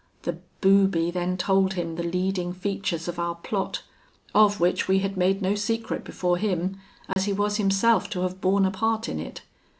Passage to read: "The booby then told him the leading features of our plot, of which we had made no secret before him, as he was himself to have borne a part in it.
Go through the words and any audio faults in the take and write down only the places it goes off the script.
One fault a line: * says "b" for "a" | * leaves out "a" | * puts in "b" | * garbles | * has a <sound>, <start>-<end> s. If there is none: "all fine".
* has a dropout, 7.1-7.2 s